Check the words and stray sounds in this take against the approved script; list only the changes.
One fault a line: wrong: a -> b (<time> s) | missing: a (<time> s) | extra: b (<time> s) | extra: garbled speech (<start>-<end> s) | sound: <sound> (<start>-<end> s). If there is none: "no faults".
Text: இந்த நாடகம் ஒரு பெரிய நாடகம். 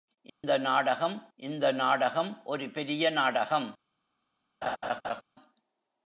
sound: dropout (0.3-0.4 s)
extra: இந்த நாடகம் (1.3 s)
sound: laugh (4.6-5.2 s)